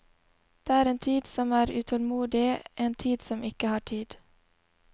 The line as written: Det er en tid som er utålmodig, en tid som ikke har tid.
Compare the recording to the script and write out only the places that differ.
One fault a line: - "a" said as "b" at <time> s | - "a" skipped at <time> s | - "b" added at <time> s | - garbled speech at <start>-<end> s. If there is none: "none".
none